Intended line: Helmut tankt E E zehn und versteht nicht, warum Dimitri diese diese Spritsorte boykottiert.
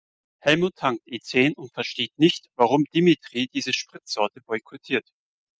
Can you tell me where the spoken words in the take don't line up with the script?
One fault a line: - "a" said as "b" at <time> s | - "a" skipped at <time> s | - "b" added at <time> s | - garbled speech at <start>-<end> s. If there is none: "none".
- "E" skipped at 1.2 s
- "diese" skipped at 3.7 s